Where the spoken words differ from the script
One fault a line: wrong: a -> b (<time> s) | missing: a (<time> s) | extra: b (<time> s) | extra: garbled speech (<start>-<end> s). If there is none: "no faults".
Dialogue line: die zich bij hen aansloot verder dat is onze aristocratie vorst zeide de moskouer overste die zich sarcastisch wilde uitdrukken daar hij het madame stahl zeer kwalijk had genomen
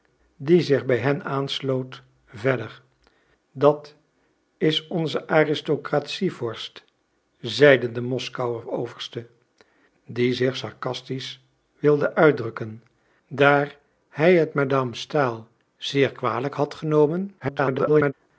extra: garbled speech (17.4-18.1 s)